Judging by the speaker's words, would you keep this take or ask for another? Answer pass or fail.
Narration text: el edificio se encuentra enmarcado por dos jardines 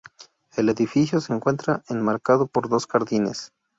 pass